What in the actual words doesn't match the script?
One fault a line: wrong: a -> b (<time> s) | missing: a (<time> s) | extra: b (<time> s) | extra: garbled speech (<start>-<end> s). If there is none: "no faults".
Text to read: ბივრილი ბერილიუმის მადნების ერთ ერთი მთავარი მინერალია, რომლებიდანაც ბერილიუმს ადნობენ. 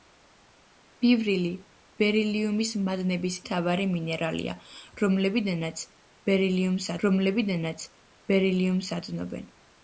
wrong: ერთ ერთი მთავარი მინერალია -> მთავარი მინერალია რომლებიდანაც ბერილიუმს (3.4 s)